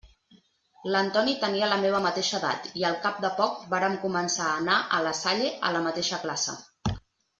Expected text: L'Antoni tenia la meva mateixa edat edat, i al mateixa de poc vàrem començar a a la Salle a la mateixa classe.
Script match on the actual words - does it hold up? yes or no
no